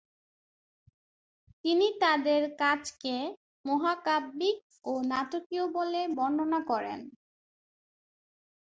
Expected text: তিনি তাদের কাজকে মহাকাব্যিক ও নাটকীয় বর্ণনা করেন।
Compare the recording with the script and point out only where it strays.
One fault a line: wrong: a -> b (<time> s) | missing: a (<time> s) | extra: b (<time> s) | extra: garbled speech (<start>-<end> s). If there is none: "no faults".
extra: বলে (5.8 s)